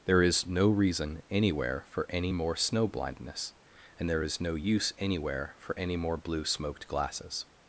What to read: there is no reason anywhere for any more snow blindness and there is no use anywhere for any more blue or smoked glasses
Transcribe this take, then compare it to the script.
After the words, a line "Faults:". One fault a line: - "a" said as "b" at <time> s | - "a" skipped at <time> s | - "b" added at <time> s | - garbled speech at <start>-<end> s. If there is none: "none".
there is no reason anywhere for any more snow blindness and there is no use anywhere for any more blue smoked glasses
Faults:
- "or" skipped at 6.5 s